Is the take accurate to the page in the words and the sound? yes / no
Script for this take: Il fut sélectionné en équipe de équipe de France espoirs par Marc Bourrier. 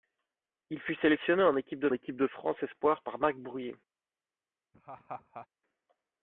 no